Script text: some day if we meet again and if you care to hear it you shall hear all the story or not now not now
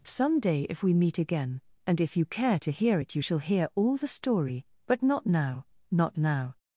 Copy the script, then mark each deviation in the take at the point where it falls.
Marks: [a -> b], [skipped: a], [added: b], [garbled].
some day if we meet again and if you care to hear it you shall hear all the story [or -> but] not now not now